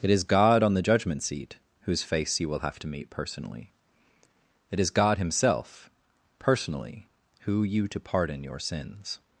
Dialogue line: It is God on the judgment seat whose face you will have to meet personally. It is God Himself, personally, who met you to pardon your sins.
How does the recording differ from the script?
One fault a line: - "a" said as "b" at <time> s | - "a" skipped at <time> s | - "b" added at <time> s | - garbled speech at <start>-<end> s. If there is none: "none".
- "met" skipped at 7.6 s